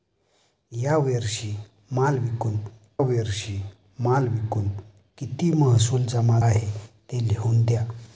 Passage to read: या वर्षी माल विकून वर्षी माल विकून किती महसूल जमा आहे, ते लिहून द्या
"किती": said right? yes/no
yes